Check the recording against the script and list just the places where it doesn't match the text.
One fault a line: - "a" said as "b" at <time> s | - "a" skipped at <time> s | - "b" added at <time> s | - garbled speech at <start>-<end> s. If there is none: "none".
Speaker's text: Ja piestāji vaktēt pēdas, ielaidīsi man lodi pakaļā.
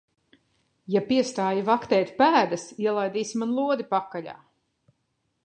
none